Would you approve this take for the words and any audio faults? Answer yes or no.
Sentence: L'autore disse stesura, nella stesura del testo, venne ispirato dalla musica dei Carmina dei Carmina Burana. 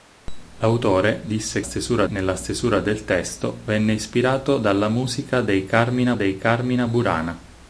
yes